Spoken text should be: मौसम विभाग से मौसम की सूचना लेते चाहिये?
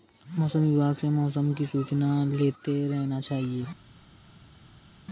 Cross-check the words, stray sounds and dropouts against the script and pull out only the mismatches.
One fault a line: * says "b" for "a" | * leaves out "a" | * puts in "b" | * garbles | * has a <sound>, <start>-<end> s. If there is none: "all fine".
* puts in "रहना"